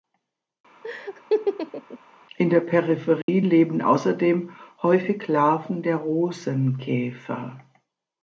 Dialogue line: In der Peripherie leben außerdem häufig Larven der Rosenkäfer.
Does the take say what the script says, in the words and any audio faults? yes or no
no